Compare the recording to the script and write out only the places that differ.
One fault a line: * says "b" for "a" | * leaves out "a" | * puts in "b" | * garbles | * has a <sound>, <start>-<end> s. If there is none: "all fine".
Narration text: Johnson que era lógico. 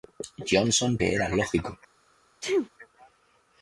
* has a sneeze, 2.4-2.7 s